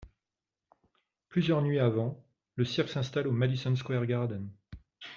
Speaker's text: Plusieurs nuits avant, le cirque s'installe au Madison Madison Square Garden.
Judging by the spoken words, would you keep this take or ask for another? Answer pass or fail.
fail